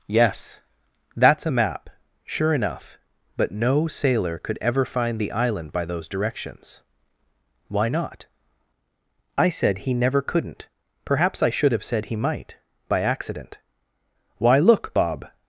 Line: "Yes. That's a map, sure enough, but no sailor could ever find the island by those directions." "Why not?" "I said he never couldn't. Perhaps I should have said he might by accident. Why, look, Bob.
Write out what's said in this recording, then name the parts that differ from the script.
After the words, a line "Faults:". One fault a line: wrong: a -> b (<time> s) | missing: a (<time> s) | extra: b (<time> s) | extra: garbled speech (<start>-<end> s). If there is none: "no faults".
"Yes. That's a map, sure enough, but no sailor could ever find the island by those directions." "Why not?" "I said he never couldn't. Perhaps I should have said he might by accident. Why, look, Bob.
Faults:
no faults